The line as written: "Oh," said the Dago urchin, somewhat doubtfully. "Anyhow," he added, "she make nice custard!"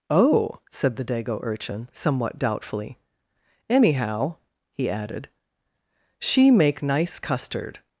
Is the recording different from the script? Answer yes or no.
no